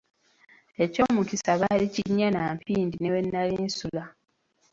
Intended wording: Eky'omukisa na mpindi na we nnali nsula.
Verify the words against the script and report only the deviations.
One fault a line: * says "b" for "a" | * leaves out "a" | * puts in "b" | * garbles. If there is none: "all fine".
* puts in "baali kinnya"
* says "ne" for "na"